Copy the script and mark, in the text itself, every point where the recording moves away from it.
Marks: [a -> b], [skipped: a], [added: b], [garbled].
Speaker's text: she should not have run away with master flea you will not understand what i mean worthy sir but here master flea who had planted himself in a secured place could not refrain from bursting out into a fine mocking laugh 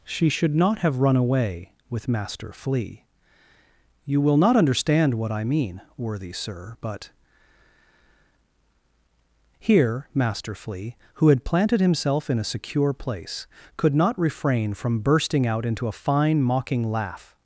she should not have run away with master flea you will not understand what i mean worthy sir but here master flea who had planted himself in a [secured -> secure] place could not refrain from bursting out into a fine mocking laugh